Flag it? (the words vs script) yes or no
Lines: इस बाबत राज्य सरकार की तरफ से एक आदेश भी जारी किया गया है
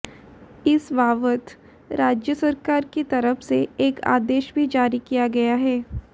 no